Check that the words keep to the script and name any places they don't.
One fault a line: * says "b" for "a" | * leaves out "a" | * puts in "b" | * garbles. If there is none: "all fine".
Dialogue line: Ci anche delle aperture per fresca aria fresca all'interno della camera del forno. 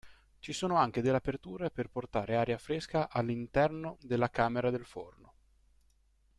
* puts in "sono"
* says "portare" for "fresca"